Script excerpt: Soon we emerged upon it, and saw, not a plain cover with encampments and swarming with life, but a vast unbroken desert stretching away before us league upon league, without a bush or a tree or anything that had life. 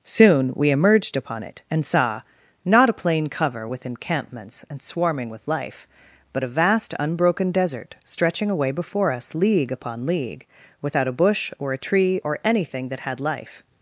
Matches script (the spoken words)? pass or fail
pass